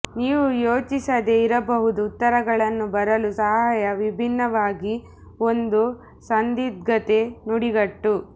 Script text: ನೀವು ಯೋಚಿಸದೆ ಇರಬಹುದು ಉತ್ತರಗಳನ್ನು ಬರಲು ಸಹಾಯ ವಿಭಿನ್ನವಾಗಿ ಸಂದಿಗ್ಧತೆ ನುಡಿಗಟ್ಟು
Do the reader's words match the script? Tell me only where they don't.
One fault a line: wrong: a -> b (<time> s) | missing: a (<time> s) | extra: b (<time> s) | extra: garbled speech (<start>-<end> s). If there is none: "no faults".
extra: ಒಂದು (5.4 s)